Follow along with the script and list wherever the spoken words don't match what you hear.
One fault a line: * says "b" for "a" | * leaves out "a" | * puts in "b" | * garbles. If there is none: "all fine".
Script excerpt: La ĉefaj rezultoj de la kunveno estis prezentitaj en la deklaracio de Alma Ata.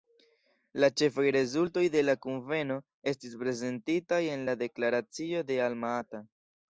all fine